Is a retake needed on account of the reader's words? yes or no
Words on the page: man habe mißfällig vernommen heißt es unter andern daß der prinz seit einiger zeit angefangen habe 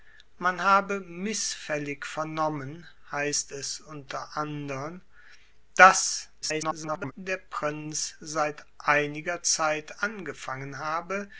yes